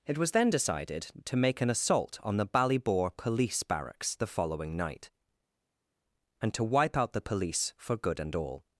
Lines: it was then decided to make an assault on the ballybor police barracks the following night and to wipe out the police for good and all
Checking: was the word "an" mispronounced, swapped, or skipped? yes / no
no